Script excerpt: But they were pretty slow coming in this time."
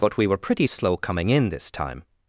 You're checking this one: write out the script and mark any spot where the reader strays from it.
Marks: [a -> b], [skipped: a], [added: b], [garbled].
But [they -> we] were pretty slow coming in this time."